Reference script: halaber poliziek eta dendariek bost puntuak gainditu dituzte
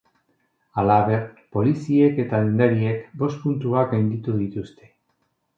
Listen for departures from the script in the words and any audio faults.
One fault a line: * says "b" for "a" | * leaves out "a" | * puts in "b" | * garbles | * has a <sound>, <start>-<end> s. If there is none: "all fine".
all fine